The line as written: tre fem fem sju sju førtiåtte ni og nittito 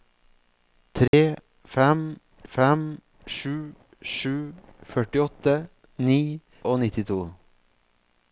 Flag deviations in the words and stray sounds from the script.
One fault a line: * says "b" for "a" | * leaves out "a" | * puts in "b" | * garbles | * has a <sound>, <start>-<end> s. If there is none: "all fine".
* has a dropout, 1.1-1.1 s